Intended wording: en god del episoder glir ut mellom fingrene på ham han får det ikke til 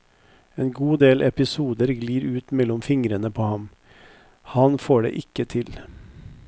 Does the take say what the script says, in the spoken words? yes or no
yes